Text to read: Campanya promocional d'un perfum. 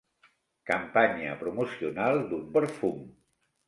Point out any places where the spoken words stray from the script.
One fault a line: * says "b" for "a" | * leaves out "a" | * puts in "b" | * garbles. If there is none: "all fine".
all fine